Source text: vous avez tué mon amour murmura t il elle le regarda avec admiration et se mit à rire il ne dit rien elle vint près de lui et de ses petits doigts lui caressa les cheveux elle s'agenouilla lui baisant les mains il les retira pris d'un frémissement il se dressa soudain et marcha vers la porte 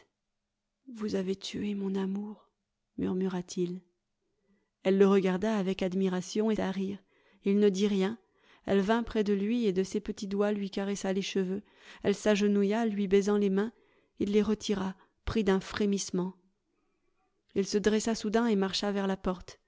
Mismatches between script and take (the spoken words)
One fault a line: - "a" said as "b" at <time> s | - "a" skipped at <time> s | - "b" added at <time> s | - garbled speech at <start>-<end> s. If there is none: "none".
- "se mit" skipped at 6.5 s